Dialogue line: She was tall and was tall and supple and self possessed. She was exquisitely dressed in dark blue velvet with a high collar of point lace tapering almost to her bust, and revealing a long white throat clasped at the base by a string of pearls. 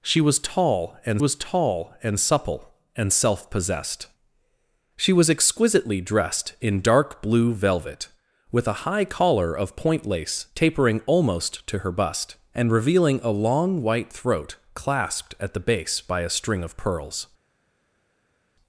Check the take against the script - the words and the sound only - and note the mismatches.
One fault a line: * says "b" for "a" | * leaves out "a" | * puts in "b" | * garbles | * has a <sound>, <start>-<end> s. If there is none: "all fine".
all fine